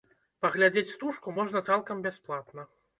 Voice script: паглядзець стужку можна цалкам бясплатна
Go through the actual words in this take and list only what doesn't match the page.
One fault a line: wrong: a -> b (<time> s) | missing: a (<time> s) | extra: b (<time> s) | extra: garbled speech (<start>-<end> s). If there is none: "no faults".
no faults